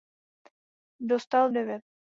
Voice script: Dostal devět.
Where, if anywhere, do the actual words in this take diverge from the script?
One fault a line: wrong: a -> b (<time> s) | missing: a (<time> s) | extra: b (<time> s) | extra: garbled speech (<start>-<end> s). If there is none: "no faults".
no faults